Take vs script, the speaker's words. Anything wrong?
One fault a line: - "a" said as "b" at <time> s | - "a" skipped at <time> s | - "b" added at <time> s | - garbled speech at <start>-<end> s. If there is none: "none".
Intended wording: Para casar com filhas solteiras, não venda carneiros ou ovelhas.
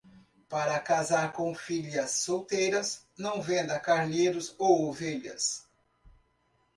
none